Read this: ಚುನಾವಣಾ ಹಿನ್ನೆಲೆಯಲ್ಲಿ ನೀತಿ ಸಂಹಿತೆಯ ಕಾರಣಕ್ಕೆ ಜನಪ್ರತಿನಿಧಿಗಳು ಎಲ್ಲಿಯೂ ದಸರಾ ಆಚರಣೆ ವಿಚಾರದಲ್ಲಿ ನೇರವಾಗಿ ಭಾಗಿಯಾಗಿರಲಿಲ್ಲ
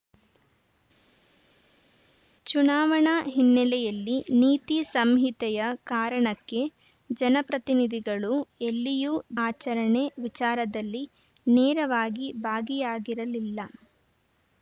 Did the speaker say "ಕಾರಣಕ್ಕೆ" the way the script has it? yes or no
yes